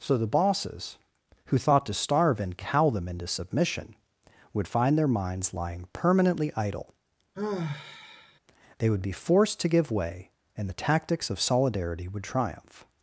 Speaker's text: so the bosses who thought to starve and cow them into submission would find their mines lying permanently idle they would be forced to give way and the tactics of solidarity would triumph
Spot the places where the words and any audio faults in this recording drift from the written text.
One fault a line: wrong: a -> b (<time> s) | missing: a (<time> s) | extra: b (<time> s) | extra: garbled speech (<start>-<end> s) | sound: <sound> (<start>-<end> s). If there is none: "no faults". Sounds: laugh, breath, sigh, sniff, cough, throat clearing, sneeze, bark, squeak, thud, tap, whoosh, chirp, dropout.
wrong: mines -> minds (5.1 s)
sound: sigh (7.3-8.4 s)